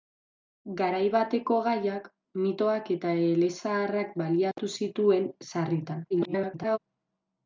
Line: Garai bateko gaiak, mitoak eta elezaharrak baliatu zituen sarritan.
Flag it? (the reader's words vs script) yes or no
yes